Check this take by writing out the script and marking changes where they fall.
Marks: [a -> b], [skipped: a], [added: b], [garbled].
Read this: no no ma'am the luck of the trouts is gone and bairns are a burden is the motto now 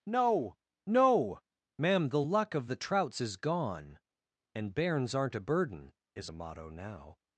no no ma'am the luck of the trouts is gone and bairns [are -> aren't] a burden is [the -> a] motto now